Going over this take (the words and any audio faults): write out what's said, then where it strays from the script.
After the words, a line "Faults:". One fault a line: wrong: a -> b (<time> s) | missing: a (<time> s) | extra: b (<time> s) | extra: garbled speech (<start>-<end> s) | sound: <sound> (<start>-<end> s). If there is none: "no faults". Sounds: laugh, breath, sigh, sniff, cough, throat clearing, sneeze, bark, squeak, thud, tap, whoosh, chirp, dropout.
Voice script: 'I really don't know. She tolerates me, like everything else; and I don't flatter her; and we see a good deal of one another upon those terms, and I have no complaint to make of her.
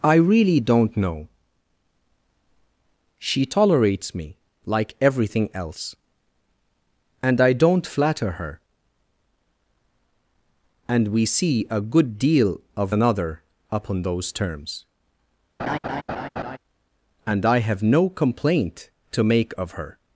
'I really don't know. She tolerates me, like everything else; and I don't flatter her; and we see a good deal of another upon those terms, and I have no complaint to make of her.
Faults:
missing: one (12.9 s)
sound: laugh (15.6-16.6 s)